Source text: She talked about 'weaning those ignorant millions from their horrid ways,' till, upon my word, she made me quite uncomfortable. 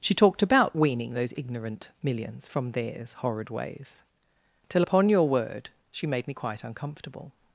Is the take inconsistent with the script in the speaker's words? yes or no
yes